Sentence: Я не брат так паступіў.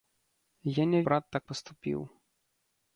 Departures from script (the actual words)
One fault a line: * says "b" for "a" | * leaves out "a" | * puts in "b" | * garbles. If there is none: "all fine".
all fine